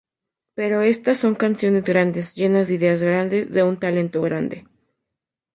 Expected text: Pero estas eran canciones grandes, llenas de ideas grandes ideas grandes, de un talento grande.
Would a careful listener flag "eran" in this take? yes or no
yes